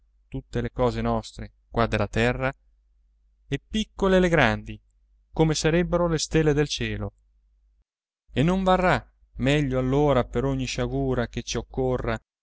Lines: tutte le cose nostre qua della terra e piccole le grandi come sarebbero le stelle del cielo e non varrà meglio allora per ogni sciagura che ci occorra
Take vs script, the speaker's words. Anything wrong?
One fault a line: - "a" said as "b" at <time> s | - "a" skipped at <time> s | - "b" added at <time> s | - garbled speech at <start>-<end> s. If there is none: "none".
none